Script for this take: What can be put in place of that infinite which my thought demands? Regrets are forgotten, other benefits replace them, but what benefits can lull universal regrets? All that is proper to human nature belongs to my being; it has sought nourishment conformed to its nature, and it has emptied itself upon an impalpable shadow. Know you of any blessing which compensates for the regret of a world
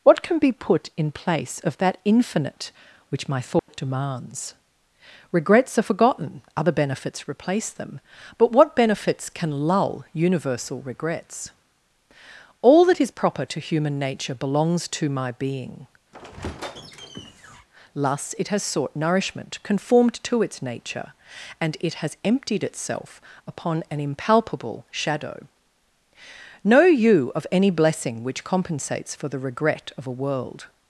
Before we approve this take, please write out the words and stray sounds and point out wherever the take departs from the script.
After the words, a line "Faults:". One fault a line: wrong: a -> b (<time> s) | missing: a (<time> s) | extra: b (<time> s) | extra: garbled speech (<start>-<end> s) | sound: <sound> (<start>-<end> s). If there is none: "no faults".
What can be put in place of that infinite which my thought demands? Regrets are forgotten, other benefits replace them, but what benefits can lull universal regrets? All that is proper to human nature belongs to my being; thus it has sought nourishment conformed to its nature, and it has emptied itself upon an impalpable shadow. Know you of any blessing which compensates for the regret of a world
Faults:
sound: dropout (3.6-3.7 s)
sound: squeak (16.1-17.7 s)
extra: thus (17.9 s)